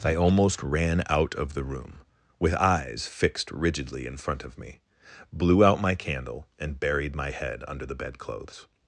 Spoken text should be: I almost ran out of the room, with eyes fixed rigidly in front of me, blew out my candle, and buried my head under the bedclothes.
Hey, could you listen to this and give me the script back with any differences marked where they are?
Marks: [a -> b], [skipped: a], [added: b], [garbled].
I almost ran out of the room, with eyes fixed rigidly in front of me, blew out my candle, and buried my head under the bedclothes.